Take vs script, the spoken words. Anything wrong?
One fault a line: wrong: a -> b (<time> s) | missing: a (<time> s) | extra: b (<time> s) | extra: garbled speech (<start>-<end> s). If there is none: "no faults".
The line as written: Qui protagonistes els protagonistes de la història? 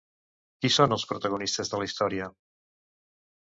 wrong: protagonistes -> són (0.7 s)